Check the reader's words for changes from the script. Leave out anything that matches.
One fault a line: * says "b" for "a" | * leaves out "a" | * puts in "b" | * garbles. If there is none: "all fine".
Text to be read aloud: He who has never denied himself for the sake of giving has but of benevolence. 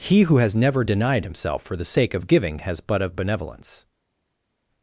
all fine